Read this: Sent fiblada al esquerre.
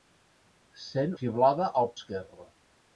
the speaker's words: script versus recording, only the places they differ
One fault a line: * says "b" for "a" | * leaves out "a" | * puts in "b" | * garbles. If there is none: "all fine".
all fine